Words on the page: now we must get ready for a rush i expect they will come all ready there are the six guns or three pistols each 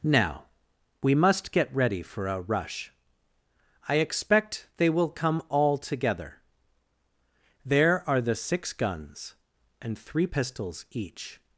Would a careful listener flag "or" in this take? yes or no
yes